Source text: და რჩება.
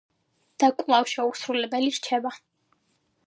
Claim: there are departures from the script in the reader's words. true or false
true